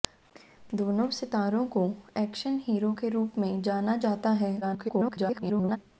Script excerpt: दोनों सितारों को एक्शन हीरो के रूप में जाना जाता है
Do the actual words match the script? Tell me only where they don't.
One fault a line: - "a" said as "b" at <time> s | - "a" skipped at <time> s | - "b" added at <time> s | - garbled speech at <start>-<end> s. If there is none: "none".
- garbled speech at 4.6-5.8 s